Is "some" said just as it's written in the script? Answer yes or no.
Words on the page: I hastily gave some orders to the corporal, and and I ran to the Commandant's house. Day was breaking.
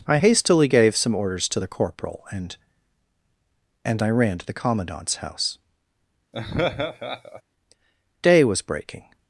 yes